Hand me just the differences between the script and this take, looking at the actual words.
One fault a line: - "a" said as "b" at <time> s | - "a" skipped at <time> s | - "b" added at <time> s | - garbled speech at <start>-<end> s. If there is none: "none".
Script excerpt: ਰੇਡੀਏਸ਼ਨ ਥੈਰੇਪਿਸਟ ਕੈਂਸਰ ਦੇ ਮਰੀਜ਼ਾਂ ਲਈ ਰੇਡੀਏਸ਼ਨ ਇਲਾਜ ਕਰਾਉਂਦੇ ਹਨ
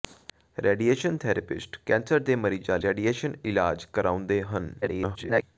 - "ਲਈ" skipped at 2.8 s
- garbled speech at 4.8-5.4 s